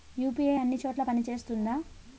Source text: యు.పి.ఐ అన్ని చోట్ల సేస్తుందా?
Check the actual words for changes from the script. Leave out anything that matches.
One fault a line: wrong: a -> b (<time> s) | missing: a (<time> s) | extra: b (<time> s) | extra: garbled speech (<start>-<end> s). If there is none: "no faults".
extra: పని (1.0 s)